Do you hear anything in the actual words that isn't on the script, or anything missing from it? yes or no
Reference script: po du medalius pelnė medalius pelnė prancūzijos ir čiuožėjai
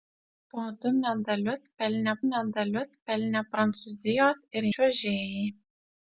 no